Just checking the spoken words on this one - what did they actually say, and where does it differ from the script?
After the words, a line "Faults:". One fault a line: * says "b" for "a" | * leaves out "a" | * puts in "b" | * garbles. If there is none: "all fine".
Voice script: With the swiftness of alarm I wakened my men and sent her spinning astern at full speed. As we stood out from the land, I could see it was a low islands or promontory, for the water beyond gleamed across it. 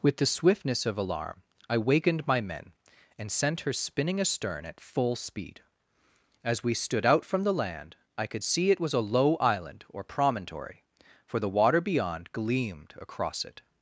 With the swiftness of alarm I wakened my men and sent her spinning astern at full speed. As we stood out from the land, I could see it was a low island or promontory, for the water beyond gleamed across it.
Faults:
* says "island" for "islands"